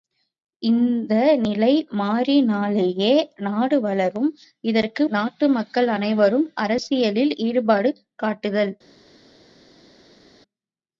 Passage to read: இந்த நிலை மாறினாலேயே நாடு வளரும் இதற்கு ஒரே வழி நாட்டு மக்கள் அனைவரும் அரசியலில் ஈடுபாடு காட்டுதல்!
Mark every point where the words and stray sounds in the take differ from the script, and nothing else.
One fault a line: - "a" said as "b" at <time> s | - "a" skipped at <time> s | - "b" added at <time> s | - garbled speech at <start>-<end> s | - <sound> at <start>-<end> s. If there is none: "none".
- "ஒரே வழி" skipped at 5.0 s